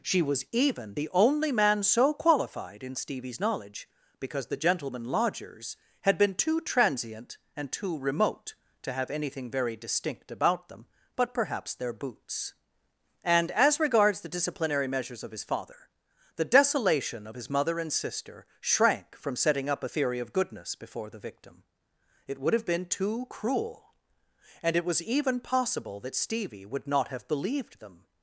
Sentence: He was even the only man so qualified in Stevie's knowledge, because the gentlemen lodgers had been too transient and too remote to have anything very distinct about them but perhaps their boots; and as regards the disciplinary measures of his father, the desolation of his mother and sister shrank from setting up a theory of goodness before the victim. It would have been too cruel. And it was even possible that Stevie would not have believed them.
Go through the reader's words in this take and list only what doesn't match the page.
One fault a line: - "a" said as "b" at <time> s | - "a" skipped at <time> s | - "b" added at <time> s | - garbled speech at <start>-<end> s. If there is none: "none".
- "He" said as "She" at 0.0 s